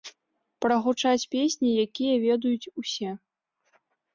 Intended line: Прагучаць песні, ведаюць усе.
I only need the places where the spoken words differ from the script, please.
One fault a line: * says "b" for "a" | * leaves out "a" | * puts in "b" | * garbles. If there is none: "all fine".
* puts in "якія"